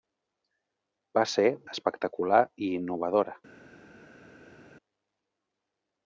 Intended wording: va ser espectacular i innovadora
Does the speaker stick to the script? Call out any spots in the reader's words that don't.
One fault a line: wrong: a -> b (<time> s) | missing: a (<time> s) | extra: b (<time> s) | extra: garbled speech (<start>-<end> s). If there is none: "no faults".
no faults